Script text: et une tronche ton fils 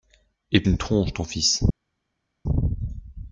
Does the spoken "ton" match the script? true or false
true